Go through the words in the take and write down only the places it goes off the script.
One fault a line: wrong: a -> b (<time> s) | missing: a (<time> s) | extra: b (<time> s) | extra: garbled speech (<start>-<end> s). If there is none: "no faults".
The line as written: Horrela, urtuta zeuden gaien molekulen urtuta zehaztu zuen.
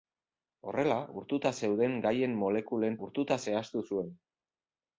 no faults